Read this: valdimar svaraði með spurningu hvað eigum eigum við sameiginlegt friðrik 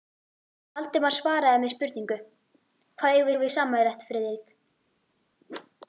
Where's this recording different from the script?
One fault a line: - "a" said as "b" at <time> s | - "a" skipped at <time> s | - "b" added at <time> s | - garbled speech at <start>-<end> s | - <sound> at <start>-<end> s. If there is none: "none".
none